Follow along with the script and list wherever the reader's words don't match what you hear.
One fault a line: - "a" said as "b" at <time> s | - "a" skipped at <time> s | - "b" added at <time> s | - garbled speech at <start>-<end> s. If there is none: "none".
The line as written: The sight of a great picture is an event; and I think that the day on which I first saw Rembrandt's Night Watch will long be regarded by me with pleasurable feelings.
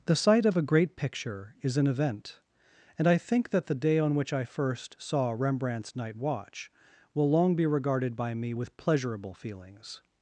none